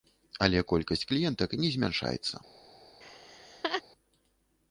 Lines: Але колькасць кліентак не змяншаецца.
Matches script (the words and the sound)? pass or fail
fail